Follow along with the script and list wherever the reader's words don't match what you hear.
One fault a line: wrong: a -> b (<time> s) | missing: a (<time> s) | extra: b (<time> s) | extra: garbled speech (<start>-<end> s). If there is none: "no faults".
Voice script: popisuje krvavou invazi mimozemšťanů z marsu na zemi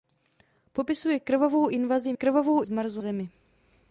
wrong: mimozemšťanů -> krvavou (2.1 s)
missing: na (3.0 s)